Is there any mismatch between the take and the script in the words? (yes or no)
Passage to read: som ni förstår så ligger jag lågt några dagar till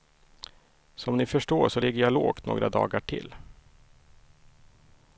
no